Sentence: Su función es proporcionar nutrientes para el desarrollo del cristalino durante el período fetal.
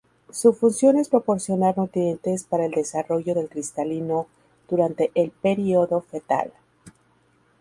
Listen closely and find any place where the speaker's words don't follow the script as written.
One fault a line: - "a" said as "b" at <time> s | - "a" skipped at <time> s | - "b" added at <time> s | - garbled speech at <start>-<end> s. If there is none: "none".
none